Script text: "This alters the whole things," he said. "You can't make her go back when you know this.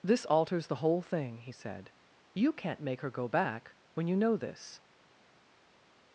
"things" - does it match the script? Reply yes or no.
no